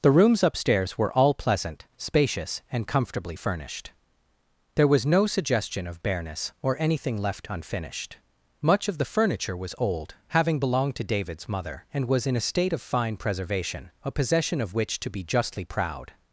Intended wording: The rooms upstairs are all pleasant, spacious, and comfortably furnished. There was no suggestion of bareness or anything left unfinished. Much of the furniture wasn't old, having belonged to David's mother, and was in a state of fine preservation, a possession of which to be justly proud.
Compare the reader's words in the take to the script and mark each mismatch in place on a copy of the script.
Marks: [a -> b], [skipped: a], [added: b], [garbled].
The rooms upstairs [are -> were] all pleasant, spacious, and comfortably furnished. There was no suggestion of bareness or anything left unfinished. Much of the furniture [wasn't -> was] old, having belonged to David's mother, and was in a state of fine preservation, a possession of which to be justly proud.